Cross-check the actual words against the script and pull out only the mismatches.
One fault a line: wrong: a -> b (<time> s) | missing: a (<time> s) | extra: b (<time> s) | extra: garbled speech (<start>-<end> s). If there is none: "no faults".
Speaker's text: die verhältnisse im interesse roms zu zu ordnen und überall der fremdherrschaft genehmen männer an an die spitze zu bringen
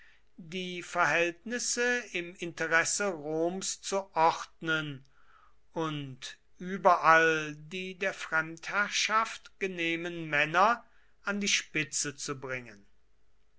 missing: zu (4.1 s)
extra: die (7.6 s)
missing: an (11.4 s)